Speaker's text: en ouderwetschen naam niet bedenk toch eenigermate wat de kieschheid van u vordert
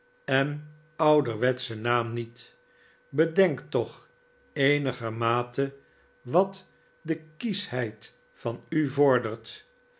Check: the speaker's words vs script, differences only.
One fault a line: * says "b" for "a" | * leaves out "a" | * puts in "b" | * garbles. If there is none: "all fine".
all fine